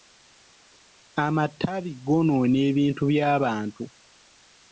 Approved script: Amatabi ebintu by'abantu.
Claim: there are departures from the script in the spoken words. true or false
true